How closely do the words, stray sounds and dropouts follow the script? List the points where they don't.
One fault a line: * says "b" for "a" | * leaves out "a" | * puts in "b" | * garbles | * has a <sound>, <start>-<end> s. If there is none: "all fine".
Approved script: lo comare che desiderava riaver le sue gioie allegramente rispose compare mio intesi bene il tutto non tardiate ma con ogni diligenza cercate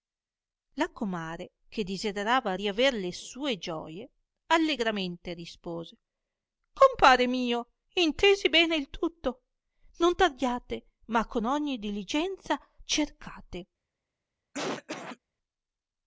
* says "la" for "lo"
* has a cough, 14.5-15.2 s